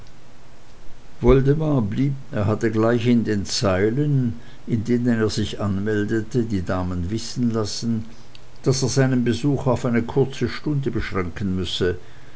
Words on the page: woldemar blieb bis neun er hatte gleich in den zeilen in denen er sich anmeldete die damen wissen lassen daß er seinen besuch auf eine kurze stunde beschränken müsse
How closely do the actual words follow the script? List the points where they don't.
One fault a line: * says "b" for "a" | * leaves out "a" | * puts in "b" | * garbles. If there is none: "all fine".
* leaves out "bis neun"